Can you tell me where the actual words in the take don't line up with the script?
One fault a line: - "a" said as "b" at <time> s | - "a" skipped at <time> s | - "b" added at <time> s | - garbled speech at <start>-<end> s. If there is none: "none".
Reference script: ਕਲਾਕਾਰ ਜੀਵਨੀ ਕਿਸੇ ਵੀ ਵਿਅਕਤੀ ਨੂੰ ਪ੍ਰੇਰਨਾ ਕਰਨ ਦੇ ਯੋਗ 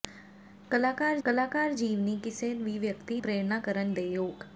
- "ਕਲਾਕਾਰ" added at 1.2 s
- "ਨੂੰ" skipped at 3.2 s